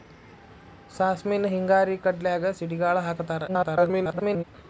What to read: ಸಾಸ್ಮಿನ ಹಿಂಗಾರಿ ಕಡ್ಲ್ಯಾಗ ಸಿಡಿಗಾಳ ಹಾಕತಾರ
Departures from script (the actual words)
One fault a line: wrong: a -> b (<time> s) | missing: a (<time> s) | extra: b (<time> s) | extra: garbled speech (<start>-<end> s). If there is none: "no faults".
extra: garbled speech (3.5-4.4 s)